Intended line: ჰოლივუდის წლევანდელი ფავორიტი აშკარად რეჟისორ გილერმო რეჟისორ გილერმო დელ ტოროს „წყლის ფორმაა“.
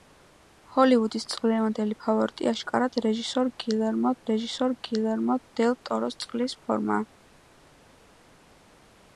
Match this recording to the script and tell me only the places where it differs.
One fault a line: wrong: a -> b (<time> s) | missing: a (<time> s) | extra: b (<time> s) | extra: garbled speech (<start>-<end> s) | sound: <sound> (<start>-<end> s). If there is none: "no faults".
no faults